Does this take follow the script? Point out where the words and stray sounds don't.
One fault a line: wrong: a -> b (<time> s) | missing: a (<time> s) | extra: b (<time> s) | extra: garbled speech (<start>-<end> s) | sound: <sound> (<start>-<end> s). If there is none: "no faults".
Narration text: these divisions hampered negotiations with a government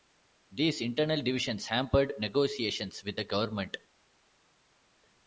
extra: internal (0.8 s)
wrong: a -> the (3.1 s)